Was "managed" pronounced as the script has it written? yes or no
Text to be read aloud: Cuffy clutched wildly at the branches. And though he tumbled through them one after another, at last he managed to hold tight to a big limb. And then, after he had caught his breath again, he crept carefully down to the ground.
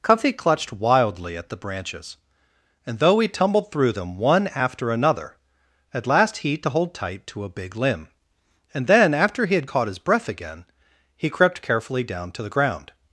no